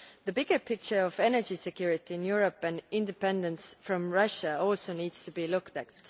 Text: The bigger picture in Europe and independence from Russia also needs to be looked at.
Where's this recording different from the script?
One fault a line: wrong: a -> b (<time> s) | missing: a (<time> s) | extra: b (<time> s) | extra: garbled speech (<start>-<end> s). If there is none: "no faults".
extra: of energy security (1.0 s)